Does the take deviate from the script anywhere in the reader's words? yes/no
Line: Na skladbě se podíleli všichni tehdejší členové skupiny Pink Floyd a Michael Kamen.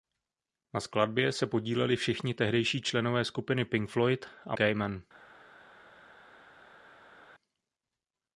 yes